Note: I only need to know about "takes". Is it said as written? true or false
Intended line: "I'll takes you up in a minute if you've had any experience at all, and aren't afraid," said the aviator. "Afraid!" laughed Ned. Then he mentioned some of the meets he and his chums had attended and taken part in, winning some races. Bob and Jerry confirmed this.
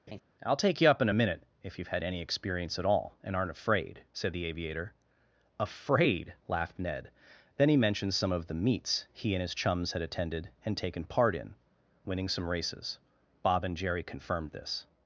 false